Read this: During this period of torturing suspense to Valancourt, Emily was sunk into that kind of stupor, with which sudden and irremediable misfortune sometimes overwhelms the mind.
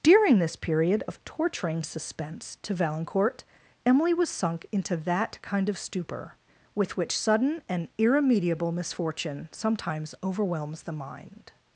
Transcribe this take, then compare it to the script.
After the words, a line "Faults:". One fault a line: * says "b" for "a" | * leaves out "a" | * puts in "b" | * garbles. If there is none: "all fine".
During this period of torturing suspense to Valancourt, Emily was sunk into that kind of stupor, with which sudden and irremediable misfortune sometimes overwhelms the mind.
Faults:
all fine